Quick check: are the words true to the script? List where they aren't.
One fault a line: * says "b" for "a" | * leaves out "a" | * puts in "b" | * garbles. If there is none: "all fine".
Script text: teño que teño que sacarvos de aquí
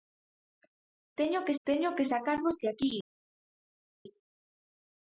all fine